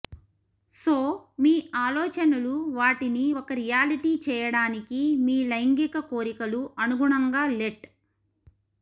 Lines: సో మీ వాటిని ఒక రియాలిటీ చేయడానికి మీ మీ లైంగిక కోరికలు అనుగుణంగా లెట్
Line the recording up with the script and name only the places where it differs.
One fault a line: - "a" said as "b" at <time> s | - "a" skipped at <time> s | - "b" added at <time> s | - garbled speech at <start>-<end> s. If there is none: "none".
- "ఆలోచనలు" added at 1.8 s
- "మీ" skipped at 5.4 s